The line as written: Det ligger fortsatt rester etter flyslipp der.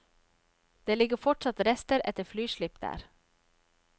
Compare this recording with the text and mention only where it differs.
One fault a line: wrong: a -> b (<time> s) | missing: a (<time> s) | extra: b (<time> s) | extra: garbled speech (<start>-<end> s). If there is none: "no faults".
no faults